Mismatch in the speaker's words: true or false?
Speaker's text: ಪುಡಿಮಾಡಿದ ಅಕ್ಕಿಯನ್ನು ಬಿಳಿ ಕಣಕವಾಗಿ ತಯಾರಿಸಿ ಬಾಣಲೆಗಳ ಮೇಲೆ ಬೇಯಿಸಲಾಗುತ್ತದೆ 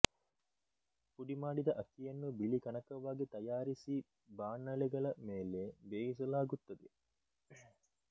false